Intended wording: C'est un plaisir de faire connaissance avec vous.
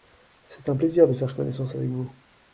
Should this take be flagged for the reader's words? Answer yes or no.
no